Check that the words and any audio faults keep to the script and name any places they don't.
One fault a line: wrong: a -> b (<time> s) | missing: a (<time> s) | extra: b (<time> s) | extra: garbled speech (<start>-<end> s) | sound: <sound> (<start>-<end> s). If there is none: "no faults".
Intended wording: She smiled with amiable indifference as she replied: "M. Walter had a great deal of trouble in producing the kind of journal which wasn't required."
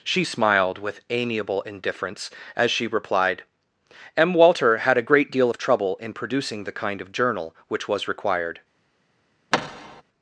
wrong: wasn't -> was (7.9 s)
sound: thud (9.5-10.0 s)